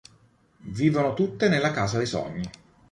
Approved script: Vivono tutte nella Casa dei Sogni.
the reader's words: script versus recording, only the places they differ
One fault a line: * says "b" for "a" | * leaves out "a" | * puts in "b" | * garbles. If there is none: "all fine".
all fine